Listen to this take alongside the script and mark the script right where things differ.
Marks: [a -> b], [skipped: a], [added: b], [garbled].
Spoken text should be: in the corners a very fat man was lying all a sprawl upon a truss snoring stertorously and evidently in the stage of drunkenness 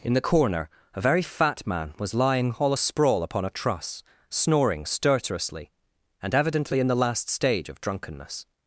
in the [corners -> corner] a very fat man was lying all a sprawl upon a truss snoring stertorously and evidently in the [added: last] stage of drunkenness